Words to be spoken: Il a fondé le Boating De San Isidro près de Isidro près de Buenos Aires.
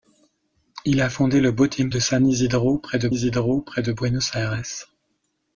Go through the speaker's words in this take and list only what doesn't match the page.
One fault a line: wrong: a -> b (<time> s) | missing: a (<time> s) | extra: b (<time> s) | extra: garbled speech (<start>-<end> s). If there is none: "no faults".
no faults